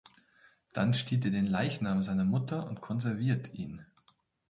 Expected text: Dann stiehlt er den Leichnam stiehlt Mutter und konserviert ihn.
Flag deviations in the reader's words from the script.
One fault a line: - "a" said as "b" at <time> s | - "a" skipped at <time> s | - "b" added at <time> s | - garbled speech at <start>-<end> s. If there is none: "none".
- "stiehlt" said as "seiner" at 2.0 s